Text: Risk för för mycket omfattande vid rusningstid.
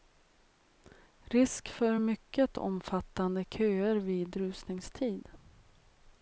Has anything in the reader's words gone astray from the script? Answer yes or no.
yes